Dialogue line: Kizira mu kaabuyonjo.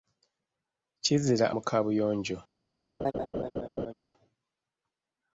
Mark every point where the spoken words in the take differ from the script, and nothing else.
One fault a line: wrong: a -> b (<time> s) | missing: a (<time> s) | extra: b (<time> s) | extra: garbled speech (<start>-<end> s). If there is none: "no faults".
no faults